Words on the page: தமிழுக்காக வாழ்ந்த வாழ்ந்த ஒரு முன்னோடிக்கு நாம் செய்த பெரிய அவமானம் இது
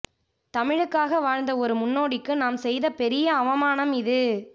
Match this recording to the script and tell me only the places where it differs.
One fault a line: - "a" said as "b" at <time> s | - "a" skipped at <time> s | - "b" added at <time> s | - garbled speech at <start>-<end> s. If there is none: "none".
- "வாழ்ந்த" skipped at 1.5 s